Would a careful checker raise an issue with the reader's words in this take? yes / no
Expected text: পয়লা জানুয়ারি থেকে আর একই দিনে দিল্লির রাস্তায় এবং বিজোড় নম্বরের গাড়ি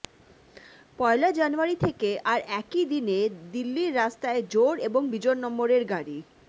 yes